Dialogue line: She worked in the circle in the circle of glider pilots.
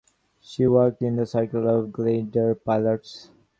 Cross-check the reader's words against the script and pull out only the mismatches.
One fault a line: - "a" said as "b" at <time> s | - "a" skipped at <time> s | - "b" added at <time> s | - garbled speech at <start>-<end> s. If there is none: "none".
- "in the circle" skipped at 1.7 s